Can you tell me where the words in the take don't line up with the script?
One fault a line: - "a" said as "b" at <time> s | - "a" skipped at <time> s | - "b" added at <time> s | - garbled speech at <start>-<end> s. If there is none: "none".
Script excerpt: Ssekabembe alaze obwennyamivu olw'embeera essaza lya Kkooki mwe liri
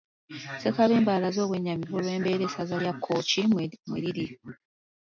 none